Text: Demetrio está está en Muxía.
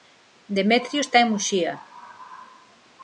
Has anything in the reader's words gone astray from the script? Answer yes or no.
yes